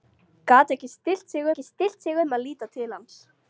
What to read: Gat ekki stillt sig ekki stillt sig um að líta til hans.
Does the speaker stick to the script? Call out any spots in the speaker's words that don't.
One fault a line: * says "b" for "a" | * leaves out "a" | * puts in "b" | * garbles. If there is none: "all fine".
all fine